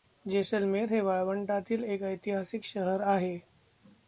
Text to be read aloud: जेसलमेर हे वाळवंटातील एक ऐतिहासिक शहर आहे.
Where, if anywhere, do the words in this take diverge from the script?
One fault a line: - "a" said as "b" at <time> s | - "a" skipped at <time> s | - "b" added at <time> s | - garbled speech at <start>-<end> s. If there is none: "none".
none